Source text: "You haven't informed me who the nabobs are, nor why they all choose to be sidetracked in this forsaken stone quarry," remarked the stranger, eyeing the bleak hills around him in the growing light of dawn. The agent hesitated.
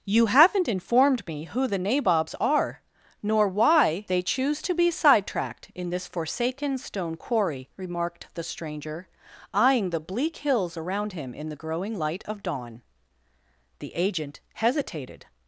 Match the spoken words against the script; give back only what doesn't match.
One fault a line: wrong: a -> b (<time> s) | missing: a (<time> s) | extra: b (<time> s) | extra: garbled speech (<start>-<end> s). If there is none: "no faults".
missing: all (4.2 s)